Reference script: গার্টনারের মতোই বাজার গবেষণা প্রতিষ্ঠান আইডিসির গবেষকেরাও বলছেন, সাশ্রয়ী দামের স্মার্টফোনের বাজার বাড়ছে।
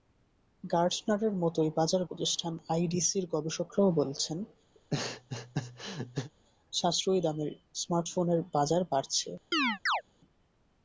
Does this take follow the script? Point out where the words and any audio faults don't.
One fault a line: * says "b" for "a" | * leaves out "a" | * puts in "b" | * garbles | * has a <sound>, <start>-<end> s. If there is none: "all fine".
* leaves out "গবেষণা"
* has a laugh, 4.7-6.3 s
* has a chirp, 9.5-10.0 s